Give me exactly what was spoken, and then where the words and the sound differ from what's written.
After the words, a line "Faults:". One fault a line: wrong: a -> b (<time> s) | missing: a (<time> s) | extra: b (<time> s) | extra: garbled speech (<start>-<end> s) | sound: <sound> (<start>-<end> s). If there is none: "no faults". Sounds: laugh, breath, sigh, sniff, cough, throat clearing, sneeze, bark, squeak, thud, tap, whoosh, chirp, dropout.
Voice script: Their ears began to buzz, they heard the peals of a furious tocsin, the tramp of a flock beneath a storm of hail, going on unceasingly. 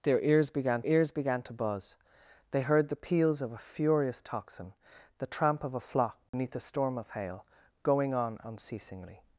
Their ears began ears began to buzz, they heard the peals of a furious tocsin, the tramp of a flock beneath a storm of hail, going on unceasingly.
Faults:
extra: ears began (0.8 s)
sound: dropout (6.3-6.3 s)